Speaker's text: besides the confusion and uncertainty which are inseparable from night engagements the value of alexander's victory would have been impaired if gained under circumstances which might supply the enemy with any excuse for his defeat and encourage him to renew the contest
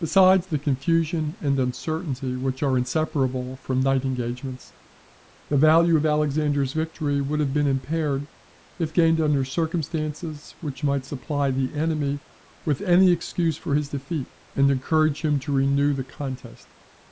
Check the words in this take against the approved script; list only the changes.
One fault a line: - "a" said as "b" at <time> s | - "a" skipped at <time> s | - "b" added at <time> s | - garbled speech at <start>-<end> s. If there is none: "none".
none